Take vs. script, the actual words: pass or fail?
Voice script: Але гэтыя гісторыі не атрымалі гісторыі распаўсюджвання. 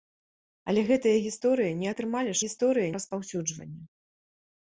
pass